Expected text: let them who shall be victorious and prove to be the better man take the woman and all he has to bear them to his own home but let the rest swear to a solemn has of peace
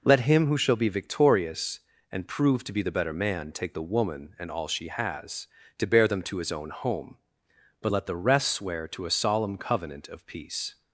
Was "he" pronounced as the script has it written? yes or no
no